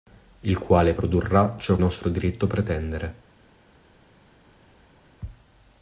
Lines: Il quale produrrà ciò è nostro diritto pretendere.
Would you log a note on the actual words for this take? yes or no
no